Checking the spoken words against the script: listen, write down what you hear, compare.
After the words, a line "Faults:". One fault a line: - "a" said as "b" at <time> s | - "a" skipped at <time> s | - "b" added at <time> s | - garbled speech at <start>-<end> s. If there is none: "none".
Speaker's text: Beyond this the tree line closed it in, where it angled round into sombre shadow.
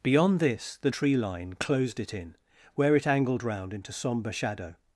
Beyond this the tree line closed it in, where it angled round into sombre shadow.
Faults:
none